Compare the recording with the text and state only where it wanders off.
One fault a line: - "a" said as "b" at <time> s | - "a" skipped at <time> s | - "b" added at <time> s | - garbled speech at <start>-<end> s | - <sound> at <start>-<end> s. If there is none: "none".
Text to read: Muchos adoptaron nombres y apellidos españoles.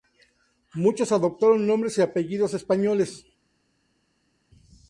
none